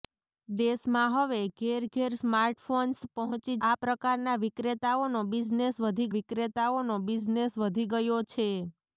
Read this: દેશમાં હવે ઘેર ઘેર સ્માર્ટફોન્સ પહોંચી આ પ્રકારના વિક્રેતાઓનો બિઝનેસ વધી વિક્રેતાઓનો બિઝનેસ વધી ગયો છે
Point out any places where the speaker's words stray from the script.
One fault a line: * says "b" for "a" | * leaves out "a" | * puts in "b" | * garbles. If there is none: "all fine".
all fine